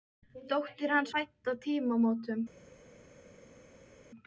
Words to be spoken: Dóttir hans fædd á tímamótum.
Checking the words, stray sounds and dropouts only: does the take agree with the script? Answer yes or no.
yes